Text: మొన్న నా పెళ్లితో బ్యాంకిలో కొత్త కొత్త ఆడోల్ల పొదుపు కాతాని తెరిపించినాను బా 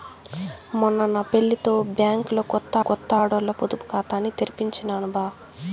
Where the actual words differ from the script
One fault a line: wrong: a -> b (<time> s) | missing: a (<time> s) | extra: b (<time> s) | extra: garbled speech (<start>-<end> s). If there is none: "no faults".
no faults